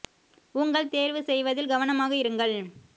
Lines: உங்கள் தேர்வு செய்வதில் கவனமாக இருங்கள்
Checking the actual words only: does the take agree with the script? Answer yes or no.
yes